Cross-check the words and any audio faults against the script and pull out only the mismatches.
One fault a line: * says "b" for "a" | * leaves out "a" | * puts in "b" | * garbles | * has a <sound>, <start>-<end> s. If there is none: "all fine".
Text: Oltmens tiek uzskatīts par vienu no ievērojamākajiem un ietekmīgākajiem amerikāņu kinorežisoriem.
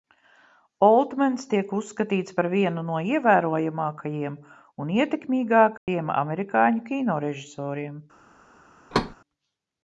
* has a dropout, 5.8-5.9 s
* has a thud, 8.9-9.2 s